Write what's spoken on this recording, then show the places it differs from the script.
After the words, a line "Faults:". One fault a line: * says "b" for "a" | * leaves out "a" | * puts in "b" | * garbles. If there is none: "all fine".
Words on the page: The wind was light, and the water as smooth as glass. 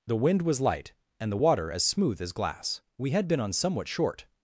The wind was light, and the water as smooth as glass. We had been on somewhat short
Faults:
* puts in "We had been on somewhat short"